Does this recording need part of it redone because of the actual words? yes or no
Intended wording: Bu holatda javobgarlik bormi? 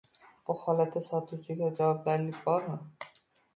yes